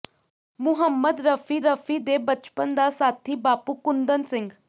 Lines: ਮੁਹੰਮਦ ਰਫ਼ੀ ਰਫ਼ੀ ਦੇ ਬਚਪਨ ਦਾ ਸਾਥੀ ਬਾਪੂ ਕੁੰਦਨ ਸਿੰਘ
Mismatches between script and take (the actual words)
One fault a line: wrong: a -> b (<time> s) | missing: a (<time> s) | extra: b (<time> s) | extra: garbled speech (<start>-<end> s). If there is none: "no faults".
no faults